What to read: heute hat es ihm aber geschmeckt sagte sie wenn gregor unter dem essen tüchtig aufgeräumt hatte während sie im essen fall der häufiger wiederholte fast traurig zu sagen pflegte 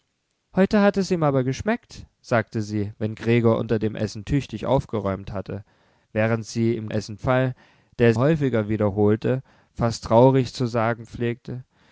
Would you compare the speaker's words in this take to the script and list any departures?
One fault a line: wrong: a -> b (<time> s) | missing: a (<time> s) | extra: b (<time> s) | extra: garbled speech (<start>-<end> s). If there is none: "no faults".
no faults